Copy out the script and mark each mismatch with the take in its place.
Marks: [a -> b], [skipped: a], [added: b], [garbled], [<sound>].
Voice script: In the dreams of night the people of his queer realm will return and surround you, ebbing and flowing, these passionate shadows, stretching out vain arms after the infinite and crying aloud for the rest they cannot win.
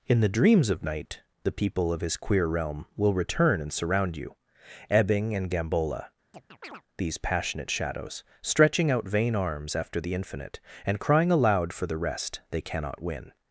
In the dreams of night the people of his queer realm will return and surround you, ebbing and [flowing, -> gambola] [chirp] these passionate shadows, stretching out vain arms after the infinite and crying aloud for the rest they cannot win.